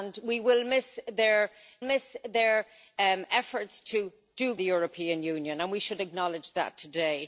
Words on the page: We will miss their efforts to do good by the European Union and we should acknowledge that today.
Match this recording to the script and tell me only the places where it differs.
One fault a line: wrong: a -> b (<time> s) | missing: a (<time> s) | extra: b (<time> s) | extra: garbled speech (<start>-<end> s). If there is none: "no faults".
extra: miss their (1.8 s)
missing: good by (4.5 s)